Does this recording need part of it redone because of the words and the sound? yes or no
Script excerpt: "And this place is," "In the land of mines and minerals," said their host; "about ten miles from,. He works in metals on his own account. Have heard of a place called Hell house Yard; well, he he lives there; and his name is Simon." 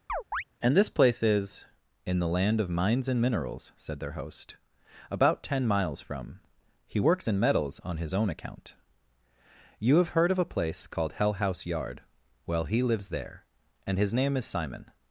yes